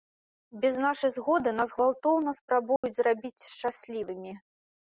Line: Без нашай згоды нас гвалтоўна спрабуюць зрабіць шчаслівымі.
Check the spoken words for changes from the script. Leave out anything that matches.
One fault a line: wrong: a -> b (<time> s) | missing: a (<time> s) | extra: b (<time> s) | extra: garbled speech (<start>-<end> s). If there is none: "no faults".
no faults